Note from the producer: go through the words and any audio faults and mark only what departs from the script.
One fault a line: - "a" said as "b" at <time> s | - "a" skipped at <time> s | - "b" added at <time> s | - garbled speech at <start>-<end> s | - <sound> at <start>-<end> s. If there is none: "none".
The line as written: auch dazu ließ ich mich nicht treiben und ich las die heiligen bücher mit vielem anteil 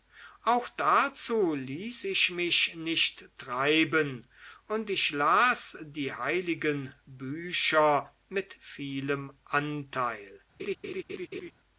- laugh at 10.6-11.5 s